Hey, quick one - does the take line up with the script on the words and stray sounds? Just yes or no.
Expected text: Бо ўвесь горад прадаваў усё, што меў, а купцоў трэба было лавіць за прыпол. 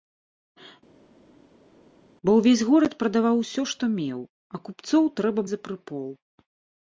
no